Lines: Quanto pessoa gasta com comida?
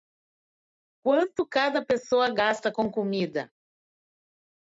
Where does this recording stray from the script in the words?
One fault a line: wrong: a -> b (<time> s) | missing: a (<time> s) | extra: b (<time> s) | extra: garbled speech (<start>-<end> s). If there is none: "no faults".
extra: cada (1.5 s)